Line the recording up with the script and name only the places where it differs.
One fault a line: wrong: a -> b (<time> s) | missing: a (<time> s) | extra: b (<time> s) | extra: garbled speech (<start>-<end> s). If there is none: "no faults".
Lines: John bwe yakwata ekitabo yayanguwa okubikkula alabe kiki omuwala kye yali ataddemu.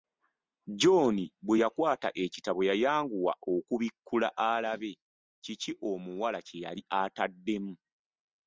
no faults